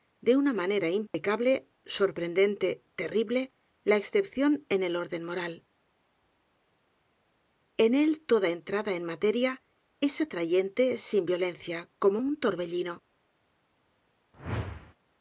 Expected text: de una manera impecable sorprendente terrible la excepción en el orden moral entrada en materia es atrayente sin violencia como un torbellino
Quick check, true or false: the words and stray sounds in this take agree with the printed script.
false